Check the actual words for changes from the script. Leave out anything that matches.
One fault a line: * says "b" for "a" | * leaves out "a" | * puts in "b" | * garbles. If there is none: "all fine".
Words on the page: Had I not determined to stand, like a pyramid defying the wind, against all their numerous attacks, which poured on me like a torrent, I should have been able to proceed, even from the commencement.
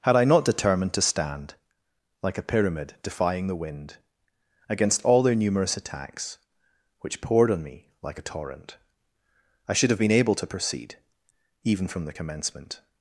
all fine